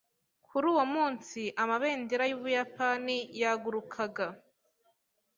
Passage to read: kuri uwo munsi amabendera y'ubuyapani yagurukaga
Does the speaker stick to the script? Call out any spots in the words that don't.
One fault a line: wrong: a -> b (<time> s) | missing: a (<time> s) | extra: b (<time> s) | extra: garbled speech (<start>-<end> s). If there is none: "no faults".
no faults